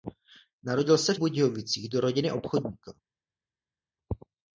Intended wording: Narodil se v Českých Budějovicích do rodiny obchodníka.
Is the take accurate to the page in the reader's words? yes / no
no